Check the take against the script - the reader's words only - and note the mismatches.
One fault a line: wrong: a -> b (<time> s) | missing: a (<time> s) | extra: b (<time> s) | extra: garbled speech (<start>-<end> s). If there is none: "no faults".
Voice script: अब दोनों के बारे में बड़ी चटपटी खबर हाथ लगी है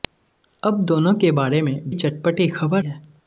missing: बड़ी (1.9 s)
missing: हाथ लगी (2.8 s)